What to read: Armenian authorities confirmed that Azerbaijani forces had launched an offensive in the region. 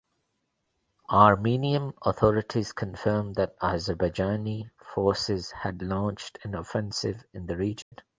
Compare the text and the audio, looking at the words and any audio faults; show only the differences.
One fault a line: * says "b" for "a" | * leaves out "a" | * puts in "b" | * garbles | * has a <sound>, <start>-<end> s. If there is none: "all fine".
* has a dropout, 7.8-7.9 s